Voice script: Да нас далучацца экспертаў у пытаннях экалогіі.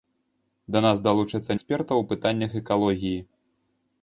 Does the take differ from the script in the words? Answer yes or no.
no